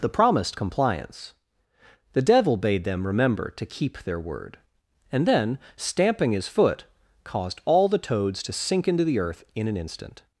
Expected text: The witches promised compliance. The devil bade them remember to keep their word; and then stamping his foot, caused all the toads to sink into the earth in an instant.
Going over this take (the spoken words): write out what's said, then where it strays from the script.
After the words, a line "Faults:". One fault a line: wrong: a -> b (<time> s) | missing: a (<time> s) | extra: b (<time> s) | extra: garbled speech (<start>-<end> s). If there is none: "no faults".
The promised compliance. The devil bade them remember to keep their word; and then stamping his foot, caused all the toads to sink into the earth in an instant.
Faults:
missing: witches (0.1 s)